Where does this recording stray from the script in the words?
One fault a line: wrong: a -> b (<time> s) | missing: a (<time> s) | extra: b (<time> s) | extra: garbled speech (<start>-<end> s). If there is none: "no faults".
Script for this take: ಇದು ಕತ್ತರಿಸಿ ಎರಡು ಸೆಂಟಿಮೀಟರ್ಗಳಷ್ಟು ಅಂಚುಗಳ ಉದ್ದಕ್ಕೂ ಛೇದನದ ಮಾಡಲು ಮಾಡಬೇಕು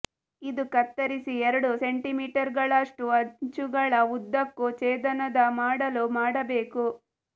no faults